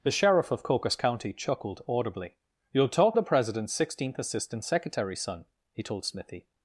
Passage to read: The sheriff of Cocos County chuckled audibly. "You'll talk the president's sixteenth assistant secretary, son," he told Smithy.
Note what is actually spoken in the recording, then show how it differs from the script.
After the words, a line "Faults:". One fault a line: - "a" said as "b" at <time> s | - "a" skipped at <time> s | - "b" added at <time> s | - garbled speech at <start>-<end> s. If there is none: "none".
The sheriff of Cocos County chuckled audibly. "You'll talk the president's sixteenth assistant secretary, son," he told Smithy.
Faults:
none